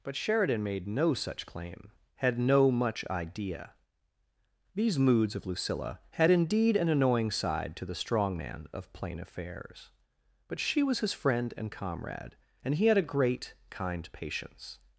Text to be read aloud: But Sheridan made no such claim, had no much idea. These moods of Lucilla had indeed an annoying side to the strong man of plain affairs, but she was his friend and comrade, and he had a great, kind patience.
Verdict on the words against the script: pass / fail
pass